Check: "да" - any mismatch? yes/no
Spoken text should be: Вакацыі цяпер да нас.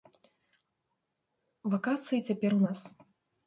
yes